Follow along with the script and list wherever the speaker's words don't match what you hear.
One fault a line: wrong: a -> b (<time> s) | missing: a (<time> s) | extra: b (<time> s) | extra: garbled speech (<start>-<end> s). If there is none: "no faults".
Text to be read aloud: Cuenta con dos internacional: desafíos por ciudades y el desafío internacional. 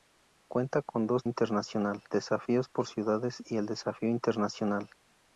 no faults